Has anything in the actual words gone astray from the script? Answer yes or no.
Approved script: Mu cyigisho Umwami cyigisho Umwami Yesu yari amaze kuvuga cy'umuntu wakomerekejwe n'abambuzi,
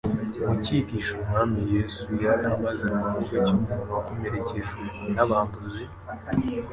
yes